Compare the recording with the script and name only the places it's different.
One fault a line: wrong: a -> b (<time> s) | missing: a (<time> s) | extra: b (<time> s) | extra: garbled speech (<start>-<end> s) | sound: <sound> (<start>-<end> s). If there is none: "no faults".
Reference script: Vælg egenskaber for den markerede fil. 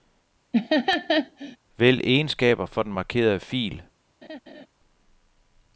sound: laugh (0.5-1.6 s)
sound: laugh (4.2-4.7 s)